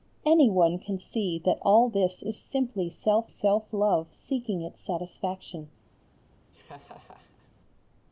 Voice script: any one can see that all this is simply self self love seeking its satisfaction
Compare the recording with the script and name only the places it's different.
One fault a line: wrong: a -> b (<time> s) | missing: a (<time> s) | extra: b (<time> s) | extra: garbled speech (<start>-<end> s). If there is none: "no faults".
no faults